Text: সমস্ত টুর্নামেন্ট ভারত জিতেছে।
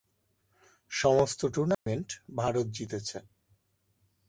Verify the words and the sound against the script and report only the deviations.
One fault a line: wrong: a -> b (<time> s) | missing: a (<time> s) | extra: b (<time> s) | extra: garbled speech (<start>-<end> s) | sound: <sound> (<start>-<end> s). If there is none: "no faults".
sound: dropout (1.7-1.9 s)